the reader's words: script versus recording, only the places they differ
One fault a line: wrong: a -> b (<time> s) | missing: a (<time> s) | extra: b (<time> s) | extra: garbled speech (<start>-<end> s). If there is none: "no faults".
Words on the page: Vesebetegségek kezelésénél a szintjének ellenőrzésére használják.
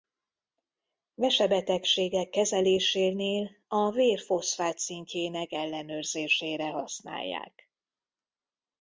extra: vér foszfát (3.9 s)